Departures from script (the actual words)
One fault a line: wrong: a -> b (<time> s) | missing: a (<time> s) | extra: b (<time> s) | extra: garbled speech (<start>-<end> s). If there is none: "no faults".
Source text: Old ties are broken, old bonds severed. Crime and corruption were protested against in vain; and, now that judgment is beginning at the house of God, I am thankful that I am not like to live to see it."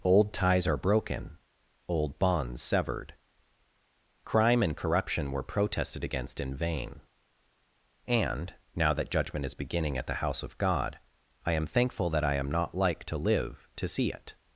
no faults